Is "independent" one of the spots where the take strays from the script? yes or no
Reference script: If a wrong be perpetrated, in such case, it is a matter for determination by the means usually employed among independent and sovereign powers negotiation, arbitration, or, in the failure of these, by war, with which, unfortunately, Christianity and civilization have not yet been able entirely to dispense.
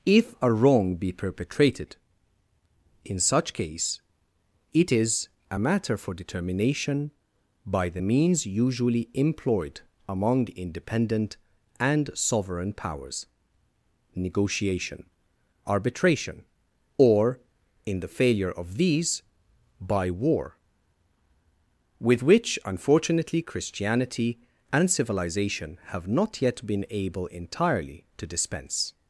no